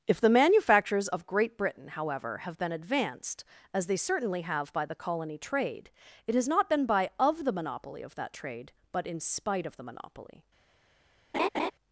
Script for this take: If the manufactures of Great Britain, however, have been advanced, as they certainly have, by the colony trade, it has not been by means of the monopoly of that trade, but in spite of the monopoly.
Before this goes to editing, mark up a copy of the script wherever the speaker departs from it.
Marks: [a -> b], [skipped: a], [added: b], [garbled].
If the manufactures of Great Britain, however, have been advanced, as they certainly have, by the colony trade, it has not been by [skipped: means] of the monopoly of that trade, but in spite of the monopoly.